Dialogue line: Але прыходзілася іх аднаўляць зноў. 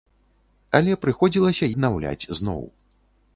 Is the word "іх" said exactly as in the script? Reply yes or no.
no